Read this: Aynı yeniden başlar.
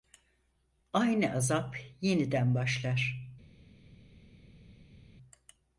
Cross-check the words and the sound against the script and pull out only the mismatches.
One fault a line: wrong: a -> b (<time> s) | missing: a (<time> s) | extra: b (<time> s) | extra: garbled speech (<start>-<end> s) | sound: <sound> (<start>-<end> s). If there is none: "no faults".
extra: azap (1.3 s)